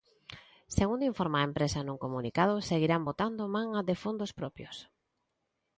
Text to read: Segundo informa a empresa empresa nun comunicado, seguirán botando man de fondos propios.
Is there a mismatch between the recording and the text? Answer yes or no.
yes